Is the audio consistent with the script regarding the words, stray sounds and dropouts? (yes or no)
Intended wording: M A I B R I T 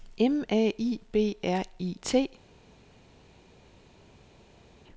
yes